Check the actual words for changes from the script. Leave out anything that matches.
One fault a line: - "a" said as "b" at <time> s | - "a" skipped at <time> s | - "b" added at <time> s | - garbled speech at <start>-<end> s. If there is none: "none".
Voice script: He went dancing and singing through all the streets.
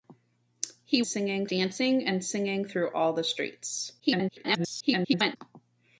- "went" said as "singing" at 1.1 s
- garbled speech at 4.0-5.4 s